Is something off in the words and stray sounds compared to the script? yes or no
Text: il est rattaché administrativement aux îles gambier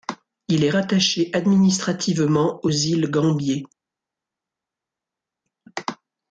no